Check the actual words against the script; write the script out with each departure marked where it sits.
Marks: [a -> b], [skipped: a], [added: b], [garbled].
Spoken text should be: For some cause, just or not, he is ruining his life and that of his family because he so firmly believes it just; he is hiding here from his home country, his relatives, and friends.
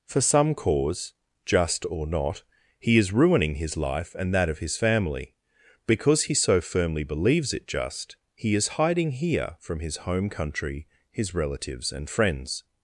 For some cause, just or not, he is ruining his life and that of his family because he so firmly believes it just; he is hiding here from his home country, his relatives, and friends.